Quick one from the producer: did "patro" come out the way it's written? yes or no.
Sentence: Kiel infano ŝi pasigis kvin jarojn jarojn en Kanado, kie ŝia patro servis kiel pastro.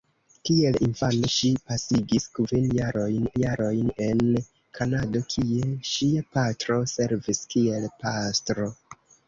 yes